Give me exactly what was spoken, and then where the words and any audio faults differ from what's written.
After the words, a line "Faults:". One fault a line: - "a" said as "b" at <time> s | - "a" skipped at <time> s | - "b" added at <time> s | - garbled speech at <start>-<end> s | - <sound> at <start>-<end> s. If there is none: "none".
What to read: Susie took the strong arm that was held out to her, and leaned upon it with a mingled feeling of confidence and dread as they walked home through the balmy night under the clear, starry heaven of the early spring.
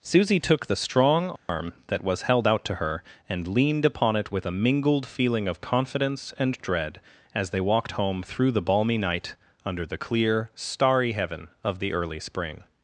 Susie took the strong arm that was held out to her, and leaned upon it with a mingled feeling of confidence and dread as they walked home through the balmy night under the clear, starry heaven of the early spring.
Faults:
- dropout at 1.4-1.5 s